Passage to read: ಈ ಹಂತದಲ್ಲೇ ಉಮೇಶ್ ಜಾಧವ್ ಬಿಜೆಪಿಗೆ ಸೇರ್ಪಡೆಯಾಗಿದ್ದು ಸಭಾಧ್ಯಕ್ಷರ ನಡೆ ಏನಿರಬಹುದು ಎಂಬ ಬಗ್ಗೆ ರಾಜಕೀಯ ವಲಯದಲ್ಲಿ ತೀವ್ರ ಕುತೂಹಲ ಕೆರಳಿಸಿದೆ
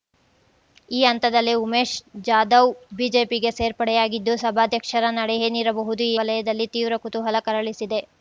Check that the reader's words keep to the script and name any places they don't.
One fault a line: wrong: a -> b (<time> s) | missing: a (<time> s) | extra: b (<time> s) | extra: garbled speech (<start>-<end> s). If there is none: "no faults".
missing: ಎಂಬ ಬಗ್ಗೆ ರಾಜಕೀಯ (6.1 s)